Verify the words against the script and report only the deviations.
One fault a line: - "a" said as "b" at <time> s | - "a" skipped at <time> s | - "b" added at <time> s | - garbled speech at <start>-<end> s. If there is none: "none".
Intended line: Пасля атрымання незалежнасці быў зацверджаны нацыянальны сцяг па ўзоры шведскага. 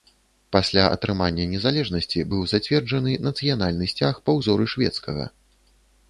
none